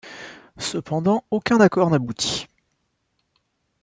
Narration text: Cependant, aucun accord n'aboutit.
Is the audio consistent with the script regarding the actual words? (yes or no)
yes